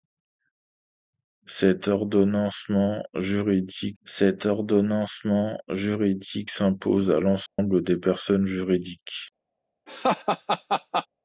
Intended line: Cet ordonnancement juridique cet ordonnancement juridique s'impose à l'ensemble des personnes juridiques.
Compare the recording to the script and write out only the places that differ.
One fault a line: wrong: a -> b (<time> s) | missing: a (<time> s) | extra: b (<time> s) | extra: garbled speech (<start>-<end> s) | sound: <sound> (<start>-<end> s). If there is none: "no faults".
sound: dropout (7.5-7.6 s)
sound: laugh (9.9-11.1 s)